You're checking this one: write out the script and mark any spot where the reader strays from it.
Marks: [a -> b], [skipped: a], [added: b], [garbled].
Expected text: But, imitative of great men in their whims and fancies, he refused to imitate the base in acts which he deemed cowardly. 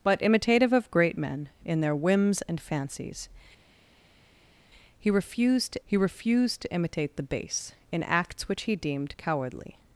But, imitative of great men in their whims and fancies, he refused to [added: he refused to] imitate the base in acts which he deemed cowardly.